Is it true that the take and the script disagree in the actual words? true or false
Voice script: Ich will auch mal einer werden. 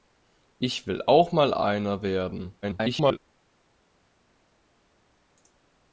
true